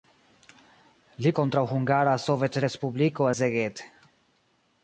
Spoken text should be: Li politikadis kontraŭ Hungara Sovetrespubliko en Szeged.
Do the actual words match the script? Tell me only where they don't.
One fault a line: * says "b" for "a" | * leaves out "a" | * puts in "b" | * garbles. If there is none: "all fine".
* leaves out "politikadis"
* leaves out "en"